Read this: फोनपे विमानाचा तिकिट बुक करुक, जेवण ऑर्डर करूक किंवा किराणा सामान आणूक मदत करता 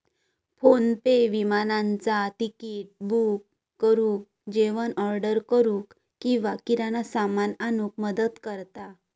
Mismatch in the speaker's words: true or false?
false